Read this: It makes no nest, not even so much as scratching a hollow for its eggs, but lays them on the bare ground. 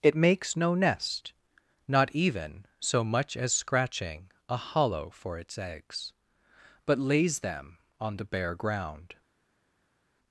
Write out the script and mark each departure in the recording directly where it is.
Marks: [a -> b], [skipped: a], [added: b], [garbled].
It makes no nest, not even so much as scratching a hollow for its eggs, but lays them on the bare ground.